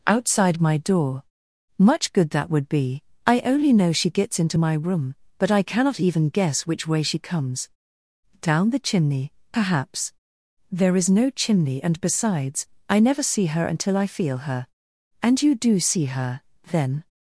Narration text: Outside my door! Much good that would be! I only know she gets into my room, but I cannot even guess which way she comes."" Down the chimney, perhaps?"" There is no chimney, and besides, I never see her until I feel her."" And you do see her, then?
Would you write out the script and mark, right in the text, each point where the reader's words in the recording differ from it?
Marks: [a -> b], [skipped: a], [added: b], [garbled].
Outside my door! Much good that would be! I only know she gets into my room, but I cannot even guess which way she comes."" Down the chimney, perhaps?"" There is no chimney, and besides, I never see her until I feel her."" And you do see her, then?